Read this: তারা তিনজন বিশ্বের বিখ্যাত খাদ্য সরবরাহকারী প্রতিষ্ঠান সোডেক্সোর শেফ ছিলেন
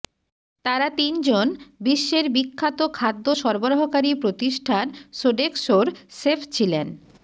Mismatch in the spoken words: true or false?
false